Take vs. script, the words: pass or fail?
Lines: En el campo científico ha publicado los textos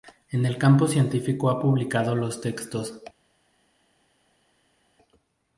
pass